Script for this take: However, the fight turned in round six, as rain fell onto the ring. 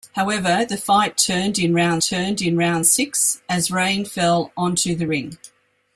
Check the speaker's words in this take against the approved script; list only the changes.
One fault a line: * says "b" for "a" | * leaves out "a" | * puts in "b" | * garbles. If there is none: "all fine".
* puts in "turned in round"